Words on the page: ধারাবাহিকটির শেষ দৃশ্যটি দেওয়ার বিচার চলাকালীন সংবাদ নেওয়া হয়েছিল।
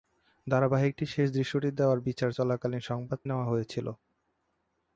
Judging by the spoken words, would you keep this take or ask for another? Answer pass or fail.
pass